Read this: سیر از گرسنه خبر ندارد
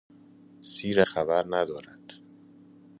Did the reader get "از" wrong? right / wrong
wrong